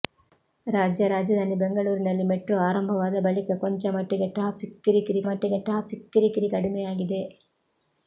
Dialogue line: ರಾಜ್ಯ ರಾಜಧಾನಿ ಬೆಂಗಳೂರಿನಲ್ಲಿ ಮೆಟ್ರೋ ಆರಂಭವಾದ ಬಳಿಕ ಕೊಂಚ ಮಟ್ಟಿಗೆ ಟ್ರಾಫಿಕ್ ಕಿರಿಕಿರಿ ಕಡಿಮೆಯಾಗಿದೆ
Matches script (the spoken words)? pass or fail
fail